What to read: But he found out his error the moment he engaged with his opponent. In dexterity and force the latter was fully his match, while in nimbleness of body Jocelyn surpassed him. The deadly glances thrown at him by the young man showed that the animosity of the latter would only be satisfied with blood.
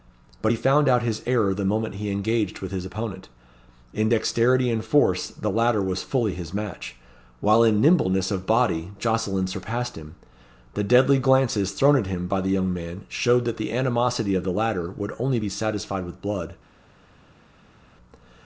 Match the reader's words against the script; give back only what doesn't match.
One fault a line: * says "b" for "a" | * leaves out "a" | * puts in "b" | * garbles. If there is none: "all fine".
all fine